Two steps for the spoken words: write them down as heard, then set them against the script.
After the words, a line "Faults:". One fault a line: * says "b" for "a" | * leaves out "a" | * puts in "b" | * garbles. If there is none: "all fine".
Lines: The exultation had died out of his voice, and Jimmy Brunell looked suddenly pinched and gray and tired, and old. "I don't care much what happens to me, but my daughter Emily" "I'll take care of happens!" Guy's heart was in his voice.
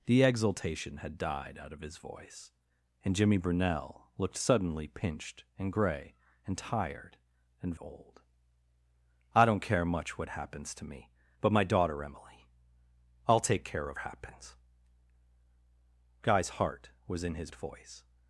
The exultation had died out of his voice, and Jimmy Brunell looked suddenly pinched and gray and tired, and old. "I don't care much what happens to me, but my daughter Emily" "I'll take care of happens!" Guy's heart was in his voice.
Faults:
all fine